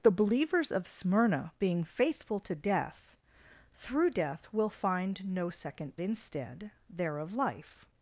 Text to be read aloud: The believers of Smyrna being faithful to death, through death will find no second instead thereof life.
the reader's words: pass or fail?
pass